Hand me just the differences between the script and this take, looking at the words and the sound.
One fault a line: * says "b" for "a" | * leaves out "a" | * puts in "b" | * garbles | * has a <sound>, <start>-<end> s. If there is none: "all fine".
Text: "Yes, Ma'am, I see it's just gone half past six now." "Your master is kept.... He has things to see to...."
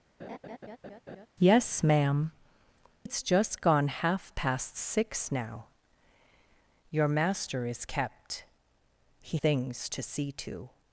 * has a laugh, 0.2-1.3 s
* leaves out "I see"
* leaves out "has"